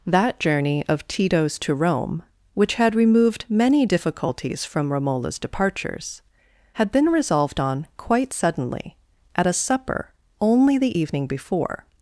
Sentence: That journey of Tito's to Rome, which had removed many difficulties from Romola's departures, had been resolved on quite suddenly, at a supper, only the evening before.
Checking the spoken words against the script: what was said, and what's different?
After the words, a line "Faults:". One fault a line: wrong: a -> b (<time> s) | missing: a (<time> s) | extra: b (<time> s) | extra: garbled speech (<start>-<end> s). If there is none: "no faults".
That journey of Tito's to Rome, which had removed many difficulties from Romola's departures, had been resolved on quite suddenly, at a supper, only the evening before.
Faults:
no faults